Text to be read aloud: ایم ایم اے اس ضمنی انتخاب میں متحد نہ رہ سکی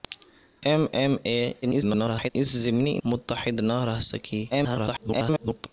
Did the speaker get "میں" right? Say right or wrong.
wrong